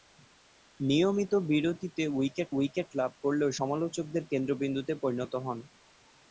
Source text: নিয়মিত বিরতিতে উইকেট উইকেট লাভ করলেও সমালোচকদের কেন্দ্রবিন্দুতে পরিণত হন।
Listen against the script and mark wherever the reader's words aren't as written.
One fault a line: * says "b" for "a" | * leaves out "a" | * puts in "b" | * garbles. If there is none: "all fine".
all fine